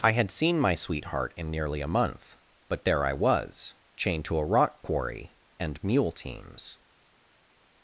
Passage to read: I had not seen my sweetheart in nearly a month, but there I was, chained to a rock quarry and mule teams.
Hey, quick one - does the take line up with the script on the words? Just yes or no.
no